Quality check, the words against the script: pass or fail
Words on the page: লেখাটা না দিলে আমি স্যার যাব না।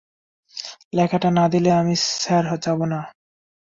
pass